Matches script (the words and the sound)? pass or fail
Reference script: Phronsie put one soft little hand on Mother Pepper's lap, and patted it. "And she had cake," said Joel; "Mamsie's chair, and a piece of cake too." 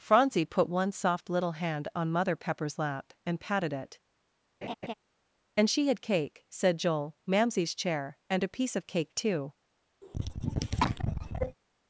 fail